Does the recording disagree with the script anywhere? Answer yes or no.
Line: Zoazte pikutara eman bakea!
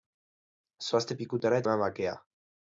no